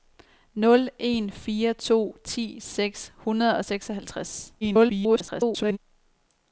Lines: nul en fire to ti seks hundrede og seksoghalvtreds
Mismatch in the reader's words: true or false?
true